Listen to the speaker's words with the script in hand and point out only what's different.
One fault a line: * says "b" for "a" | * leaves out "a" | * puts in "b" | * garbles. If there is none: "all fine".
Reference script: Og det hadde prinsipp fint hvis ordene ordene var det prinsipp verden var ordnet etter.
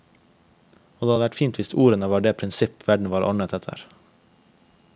* says "vært" for "prinsipp"
* leaves out "ordene"